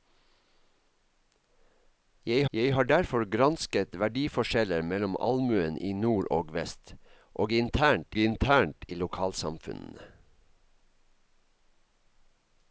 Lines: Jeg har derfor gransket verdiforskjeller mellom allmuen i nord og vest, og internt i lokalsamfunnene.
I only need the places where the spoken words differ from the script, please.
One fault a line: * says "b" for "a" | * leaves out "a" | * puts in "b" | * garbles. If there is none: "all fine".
* puts in "jeg"
* puts in "internt"